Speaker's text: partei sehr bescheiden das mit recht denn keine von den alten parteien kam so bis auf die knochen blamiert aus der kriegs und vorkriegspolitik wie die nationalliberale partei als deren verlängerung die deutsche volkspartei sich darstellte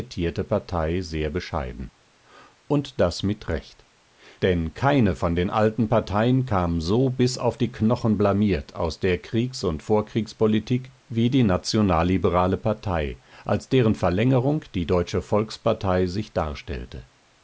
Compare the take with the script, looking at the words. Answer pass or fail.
fail